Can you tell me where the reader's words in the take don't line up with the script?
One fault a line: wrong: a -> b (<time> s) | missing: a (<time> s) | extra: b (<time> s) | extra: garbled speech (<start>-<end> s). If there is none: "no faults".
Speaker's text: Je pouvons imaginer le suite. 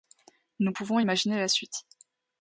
wrong: Je -> Nous (0.6 s)
wrong: le -> la (1.4 s)